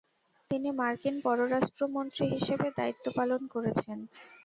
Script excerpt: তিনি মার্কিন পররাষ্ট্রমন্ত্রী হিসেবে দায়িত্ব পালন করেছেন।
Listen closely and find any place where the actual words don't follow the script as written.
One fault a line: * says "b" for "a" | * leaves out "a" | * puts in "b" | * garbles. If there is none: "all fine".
all fine